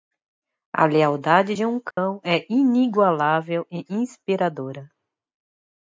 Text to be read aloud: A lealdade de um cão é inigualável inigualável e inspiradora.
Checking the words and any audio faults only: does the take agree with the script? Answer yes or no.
no